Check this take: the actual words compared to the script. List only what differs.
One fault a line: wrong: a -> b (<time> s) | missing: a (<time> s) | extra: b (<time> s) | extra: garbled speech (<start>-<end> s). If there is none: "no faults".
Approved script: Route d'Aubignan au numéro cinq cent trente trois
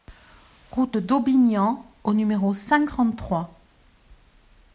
missing: cent (2.9 s)